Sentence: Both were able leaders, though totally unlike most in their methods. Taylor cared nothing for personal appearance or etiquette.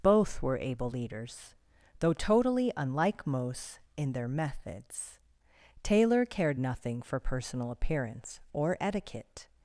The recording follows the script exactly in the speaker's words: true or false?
true